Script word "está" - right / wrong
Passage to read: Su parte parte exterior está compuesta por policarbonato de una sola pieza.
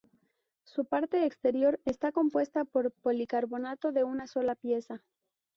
right